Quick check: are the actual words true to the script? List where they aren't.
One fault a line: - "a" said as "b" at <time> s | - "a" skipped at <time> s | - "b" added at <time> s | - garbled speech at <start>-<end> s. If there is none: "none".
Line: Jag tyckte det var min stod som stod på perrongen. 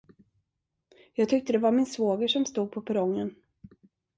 - "stod" said as "svåger" at 1.9 s